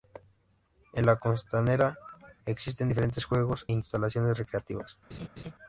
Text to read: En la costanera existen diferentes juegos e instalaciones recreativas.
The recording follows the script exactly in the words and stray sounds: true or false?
false